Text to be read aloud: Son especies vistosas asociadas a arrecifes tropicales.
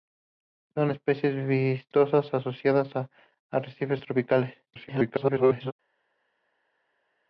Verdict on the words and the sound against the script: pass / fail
fail